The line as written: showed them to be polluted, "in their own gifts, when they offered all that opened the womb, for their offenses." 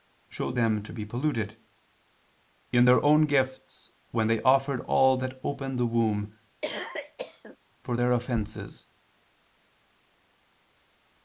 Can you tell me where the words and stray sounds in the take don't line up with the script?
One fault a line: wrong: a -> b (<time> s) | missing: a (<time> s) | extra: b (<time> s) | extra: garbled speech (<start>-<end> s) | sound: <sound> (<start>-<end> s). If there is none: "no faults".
sound: cough (6.6-7.6 s)